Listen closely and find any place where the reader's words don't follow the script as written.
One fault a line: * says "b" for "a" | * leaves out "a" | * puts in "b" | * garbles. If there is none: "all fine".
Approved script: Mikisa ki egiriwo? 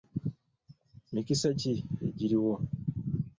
all fine